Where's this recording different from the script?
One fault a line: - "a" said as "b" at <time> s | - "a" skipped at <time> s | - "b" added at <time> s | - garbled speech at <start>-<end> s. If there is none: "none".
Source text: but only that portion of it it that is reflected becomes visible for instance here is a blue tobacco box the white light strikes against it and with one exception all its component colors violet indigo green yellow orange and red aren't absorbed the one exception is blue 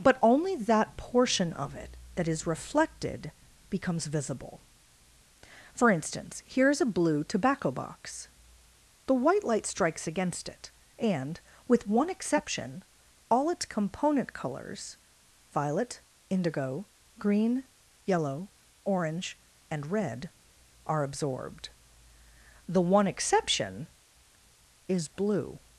- "it" skipped at 1.9 s
- "aren't" said as "are" at 20.9 s